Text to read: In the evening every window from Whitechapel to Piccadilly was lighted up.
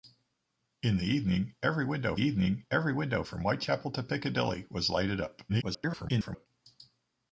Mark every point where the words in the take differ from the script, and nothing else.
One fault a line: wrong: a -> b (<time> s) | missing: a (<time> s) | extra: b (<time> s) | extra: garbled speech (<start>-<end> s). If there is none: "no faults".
extra: evening every window (2.2 s)
extra: garbled speech (5.5-6.5 s)